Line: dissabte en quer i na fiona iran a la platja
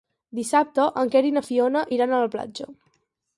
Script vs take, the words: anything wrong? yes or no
no